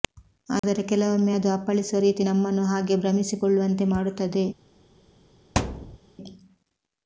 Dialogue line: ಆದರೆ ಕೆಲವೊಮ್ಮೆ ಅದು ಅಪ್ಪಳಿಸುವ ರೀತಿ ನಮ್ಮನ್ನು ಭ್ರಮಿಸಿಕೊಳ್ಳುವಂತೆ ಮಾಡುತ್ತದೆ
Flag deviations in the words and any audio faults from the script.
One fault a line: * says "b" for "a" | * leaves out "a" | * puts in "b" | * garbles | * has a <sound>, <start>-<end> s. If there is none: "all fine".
* has a dropout, 0.6-0.6 s
* puts in "ಹಾಗೆ"
* has a thud, 5.6-6.0 s